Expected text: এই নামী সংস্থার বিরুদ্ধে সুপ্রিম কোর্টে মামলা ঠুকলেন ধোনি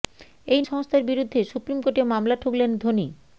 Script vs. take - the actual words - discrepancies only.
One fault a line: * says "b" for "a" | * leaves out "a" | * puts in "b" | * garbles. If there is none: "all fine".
* leaves out "নামী"